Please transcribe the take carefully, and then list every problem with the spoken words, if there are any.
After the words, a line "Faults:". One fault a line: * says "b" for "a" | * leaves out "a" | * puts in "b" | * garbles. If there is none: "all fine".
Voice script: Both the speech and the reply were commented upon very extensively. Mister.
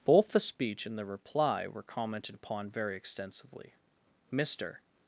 Both the speech and the reply were commented upon very extensively. Mister.
Faults:
all fine